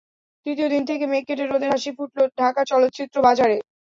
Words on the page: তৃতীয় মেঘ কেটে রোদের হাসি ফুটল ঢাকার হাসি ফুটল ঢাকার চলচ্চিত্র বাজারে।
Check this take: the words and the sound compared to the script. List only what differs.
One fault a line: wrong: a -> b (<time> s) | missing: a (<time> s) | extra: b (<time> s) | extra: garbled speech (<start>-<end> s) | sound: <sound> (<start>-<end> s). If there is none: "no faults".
extra: দিন থেকে (0.7 s)
missing: হাসি ফুটল ঢাকার (2.6 s)